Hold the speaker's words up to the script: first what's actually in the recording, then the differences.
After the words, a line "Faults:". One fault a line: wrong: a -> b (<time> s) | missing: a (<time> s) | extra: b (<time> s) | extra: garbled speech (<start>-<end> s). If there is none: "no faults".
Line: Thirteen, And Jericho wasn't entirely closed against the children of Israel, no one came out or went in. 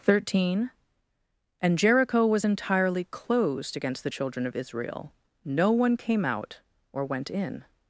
Thirteen, And Jericho was entirely closed against the children of Israel, no one came out or went in.
Faults:
wrong: wasn't -> was (2.2 s)